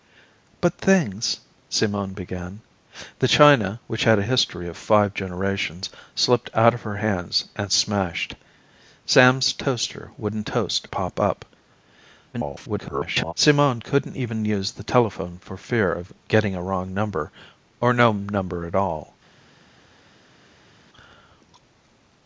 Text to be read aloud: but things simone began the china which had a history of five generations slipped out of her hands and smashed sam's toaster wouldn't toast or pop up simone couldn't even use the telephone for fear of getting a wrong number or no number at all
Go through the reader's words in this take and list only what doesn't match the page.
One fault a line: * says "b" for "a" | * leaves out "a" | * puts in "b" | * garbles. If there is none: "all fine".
* leaves out "or"
* garbles